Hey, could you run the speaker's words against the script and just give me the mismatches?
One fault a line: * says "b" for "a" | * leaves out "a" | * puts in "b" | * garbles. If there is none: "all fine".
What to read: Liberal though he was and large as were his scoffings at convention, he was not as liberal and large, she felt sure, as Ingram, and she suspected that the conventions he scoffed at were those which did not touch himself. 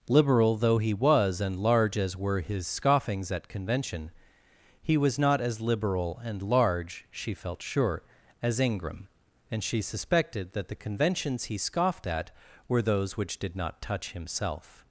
all fine